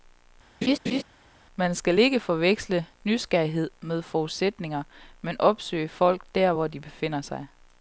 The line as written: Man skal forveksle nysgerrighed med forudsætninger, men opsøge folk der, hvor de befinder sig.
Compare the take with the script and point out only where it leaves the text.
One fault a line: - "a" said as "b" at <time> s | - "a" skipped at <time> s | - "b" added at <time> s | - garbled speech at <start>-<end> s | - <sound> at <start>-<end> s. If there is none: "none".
- laugh at 0.6-1.0 s
- "ikke" added at 2.0 s